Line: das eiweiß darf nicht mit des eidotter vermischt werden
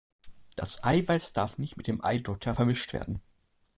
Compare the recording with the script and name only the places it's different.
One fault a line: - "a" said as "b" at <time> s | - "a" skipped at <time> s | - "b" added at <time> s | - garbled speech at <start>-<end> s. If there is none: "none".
- "des" said as "dem" at 1.9 s